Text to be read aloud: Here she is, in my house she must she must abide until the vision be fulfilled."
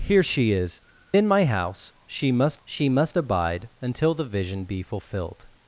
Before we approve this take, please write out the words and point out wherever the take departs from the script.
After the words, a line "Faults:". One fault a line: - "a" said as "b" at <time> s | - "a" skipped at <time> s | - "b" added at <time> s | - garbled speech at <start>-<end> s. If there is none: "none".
Here she is, in my house she must she must abide until the vision be fulfilled."
Faults:
none